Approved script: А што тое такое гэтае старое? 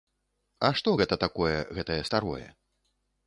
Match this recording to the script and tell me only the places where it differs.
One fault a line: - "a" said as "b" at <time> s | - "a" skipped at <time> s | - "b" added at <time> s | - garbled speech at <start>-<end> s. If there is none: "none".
- "тое" said as "гэта" at 1.0 s